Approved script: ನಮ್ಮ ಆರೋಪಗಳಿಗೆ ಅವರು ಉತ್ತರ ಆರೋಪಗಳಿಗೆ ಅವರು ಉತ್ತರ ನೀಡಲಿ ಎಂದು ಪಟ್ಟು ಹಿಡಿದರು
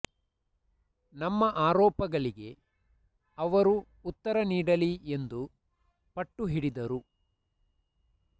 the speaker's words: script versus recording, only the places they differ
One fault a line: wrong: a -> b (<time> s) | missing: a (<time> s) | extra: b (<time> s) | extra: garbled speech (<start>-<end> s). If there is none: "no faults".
missing: ಆರೋಪಗಳಿಗೆ ಅವರು ಉತ್ತರ (4.4 s)